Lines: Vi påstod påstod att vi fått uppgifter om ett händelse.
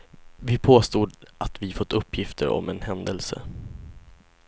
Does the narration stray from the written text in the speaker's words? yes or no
yes